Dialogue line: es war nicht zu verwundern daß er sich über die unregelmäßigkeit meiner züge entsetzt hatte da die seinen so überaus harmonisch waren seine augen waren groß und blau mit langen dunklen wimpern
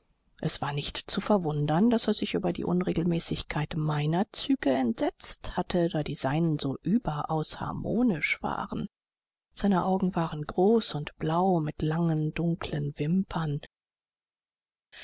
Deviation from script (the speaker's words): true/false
false